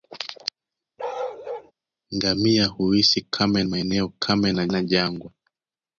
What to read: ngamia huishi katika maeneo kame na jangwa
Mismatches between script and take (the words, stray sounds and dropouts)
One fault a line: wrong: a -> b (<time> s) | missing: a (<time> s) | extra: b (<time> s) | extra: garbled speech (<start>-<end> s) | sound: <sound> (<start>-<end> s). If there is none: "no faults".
sound: bark (1.0-1.7 s)
wrong: katika -> kame (3.2 s)
extra: na (4.7 s)